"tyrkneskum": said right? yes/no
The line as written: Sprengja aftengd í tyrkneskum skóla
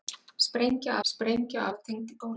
no